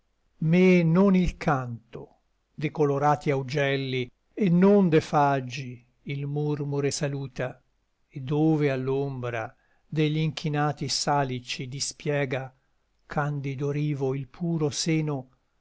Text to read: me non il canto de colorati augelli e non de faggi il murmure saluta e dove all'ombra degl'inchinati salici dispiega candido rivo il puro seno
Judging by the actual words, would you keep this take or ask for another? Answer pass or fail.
pass